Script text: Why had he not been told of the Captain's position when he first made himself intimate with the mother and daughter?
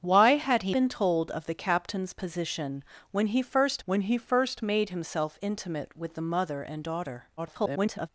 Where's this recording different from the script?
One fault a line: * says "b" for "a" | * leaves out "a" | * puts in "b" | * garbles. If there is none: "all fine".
* leaves out "not"
* puts in "when he first"
* garbles